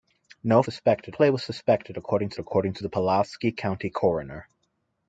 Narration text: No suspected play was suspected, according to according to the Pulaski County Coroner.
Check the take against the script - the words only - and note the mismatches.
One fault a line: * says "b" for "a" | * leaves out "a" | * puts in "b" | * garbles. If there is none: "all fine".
all fine